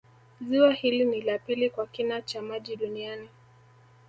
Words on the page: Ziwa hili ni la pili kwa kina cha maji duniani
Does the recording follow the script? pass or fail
pass